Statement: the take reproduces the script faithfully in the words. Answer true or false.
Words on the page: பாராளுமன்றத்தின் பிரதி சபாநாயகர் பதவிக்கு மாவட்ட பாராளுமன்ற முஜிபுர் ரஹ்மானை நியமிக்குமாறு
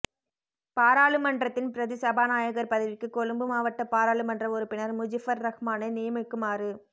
false